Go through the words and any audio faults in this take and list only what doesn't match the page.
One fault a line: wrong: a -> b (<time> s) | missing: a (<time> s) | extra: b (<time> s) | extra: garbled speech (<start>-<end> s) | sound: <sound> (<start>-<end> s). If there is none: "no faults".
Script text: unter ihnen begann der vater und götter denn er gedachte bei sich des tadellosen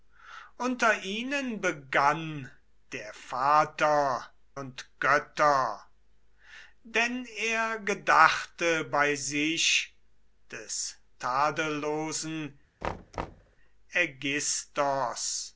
sound: thud (12.8-13.6 s)